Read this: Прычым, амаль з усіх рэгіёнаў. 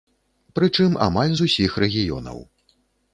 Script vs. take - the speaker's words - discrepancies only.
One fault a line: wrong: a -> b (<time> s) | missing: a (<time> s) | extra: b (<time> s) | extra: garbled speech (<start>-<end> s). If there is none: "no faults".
no faults